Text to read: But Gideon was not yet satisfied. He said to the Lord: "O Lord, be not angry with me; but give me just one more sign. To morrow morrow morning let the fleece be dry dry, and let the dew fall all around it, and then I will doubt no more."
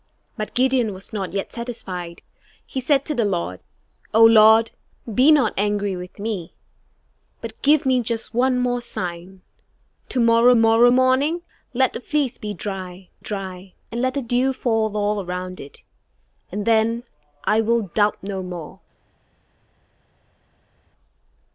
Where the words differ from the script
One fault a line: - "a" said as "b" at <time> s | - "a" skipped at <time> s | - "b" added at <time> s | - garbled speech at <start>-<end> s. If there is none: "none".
none